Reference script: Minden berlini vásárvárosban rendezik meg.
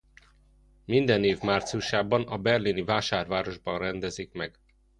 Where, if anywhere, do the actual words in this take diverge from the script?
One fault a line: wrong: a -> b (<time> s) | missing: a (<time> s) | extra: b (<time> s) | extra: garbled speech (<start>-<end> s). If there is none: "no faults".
extra: év márciusában a (1.2 s)